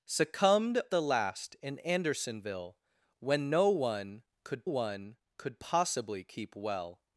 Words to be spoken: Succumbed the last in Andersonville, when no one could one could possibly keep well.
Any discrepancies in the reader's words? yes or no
no